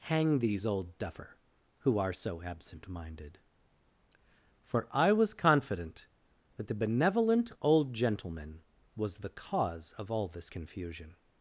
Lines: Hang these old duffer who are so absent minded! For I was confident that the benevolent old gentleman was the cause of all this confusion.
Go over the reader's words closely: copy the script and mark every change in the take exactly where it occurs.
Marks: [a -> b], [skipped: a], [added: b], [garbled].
Hang these old duffer who are so absent minded! For I was confident that the benevolent old gentleman was the cause of all this confusion.